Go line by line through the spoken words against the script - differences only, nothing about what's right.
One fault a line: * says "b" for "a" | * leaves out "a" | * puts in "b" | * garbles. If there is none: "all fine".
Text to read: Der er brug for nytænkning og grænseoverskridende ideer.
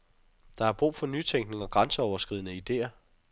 all fine